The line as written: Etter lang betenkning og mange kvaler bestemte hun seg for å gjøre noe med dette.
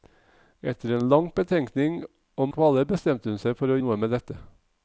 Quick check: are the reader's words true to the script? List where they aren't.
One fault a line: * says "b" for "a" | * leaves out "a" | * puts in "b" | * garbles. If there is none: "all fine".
* leaves out "mange"
* leaves out "gjøre"